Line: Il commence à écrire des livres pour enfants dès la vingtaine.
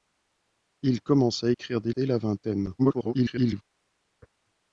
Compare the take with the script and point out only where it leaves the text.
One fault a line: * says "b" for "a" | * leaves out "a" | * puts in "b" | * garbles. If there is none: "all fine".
* leaves out "livres pour enfants"
* garbles